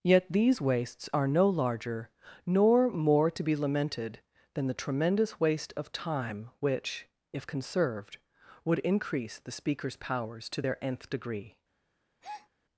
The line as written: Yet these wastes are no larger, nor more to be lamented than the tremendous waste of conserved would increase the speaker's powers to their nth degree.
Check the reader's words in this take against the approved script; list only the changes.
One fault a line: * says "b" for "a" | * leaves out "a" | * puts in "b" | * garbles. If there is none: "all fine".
* puts in "time which if"